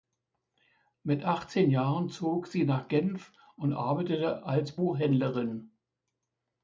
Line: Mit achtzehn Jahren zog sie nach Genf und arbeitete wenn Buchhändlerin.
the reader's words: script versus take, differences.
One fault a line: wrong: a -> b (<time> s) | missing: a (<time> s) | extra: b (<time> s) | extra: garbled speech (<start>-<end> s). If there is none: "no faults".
wrong: wenn -> als (4.4 s)